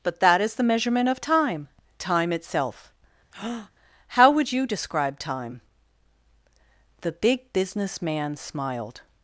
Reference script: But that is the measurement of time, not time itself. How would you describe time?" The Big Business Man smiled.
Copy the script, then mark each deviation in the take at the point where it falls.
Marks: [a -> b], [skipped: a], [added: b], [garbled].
But that is the measurement of time, [skipped: not] time itself. How would you describe time?" The Big Business Man smiled.